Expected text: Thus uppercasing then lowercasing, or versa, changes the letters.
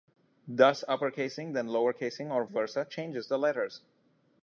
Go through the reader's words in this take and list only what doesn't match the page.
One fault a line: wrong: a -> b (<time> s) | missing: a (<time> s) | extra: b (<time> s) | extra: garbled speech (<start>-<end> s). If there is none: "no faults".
no faults